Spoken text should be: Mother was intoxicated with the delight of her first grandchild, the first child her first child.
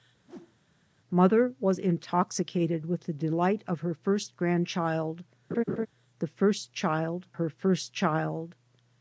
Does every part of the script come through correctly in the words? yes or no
yes